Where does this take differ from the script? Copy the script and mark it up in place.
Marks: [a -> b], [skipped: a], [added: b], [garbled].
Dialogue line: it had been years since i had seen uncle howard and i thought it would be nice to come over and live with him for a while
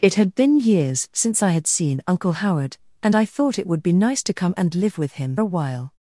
it had been years since i had seen uncle howard and i thought it would be nice to come [skipped: over] and live with him [skipped: for] a while